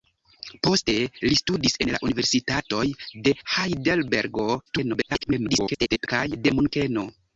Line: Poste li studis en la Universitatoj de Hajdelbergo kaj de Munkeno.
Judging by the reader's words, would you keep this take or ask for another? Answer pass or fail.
fail